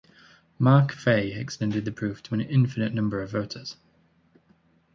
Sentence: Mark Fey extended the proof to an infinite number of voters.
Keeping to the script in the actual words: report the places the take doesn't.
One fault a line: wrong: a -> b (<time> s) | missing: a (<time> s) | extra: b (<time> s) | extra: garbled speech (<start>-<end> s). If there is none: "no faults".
no faults